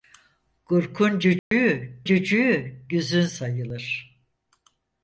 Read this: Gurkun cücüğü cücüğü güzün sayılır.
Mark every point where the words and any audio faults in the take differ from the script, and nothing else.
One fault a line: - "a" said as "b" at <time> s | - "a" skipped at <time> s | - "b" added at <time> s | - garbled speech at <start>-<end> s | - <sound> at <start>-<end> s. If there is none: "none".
- dropout at 1.4-1.5 s